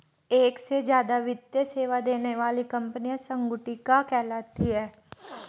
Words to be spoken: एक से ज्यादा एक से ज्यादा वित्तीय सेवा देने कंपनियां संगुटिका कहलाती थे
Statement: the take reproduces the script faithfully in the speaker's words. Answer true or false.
false